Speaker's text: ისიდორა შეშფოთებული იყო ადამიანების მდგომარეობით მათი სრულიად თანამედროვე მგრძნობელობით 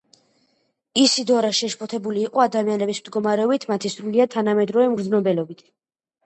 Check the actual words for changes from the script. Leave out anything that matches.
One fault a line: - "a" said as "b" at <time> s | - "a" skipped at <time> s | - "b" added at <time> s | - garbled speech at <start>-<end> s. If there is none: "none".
none